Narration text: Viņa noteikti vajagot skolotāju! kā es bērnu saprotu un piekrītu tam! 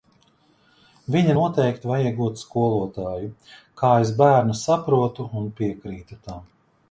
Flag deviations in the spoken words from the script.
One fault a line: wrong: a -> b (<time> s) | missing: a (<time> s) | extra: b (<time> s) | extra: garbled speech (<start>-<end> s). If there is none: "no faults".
no faults